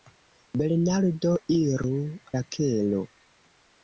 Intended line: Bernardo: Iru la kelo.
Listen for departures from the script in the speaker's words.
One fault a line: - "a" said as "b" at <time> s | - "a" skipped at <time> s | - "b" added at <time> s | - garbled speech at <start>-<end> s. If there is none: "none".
none